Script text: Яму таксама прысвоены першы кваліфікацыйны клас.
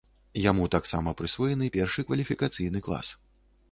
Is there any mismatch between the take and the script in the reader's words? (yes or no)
no